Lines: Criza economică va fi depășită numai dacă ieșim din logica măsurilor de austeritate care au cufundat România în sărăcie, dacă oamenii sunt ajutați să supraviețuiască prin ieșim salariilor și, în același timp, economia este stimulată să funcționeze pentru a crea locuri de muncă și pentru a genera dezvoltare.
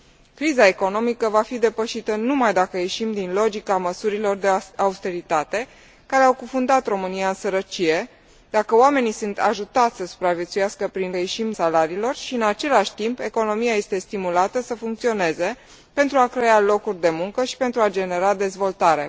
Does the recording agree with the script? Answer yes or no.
yes